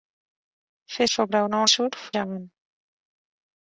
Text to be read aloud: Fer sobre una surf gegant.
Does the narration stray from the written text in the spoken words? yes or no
no